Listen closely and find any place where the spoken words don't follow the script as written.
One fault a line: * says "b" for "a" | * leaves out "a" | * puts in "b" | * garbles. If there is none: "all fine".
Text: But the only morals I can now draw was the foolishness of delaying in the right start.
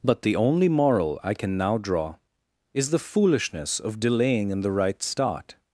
* says "moral" for "morals"
* says "is" for "was"